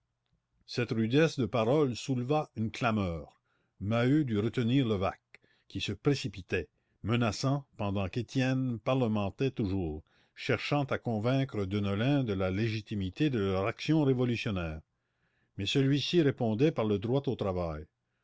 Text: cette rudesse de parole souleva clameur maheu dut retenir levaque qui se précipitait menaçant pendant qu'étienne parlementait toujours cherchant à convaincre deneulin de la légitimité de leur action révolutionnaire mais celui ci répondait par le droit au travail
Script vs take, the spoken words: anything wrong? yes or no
yes